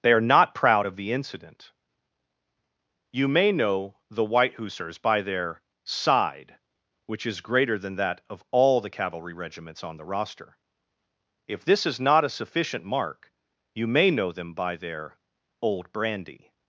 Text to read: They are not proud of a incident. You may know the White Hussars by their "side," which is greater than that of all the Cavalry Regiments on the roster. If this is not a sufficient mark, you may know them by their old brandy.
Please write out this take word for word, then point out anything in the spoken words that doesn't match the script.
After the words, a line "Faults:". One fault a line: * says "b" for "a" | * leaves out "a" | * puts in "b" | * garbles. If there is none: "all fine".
They are not proud of the incident. You may know the White Hussars by their "side," which is greater than that of all the Cavalry Regiments on the roster. If this is not a sufficient mark, you may know them by their old brandy.
Faults:
* says "the" for "a"